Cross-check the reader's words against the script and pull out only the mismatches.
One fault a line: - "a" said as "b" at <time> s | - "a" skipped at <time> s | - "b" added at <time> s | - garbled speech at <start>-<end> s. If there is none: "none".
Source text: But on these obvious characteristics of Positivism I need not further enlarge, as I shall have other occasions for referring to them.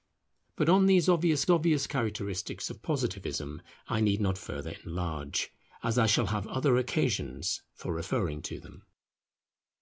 - "obvious" added at 1.5 s